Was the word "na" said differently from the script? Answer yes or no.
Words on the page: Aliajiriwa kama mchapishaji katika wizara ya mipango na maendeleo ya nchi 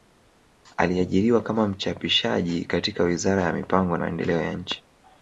yes